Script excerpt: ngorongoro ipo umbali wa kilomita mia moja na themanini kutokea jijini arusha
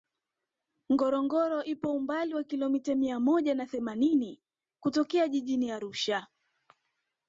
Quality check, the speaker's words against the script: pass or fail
pass